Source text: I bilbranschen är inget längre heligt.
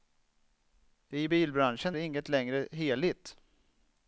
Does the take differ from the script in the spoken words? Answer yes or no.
yes